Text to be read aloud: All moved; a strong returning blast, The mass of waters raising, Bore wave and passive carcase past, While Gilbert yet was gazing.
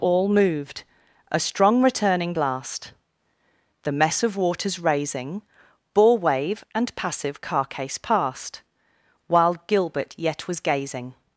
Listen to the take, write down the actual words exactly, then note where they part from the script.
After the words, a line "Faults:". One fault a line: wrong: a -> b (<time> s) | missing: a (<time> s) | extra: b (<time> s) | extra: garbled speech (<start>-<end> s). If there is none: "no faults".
All moved; a strong returning blast, The mess of waters raising, Bore wave and passive carcase past, While Gilbert yet was gazing.
Faults:
wrong: mass -> mess (3.9 s)